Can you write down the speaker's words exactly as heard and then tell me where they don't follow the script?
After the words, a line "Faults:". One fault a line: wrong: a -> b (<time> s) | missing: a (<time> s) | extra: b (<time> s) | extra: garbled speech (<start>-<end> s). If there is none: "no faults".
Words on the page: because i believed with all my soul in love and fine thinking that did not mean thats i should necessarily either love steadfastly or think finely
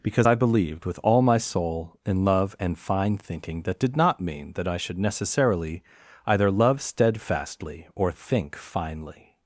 because i believed with all my soul in love and fine thinking that did not mean that i should necessarily either love steadfastly or think finely
Faults:
wrong: thats -> that (4.5 s)